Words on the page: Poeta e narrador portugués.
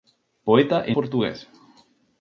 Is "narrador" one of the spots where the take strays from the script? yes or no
yes